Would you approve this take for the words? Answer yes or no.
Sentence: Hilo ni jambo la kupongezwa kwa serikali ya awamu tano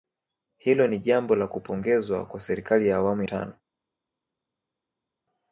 yes